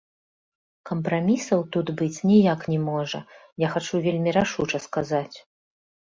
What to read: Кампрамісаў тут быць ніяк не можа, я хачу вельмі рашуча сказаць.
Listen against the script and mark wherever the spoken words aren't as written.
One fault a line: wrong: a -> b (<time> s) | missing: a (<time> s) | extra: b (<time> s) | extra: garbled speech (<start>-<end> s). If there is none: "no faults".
no faults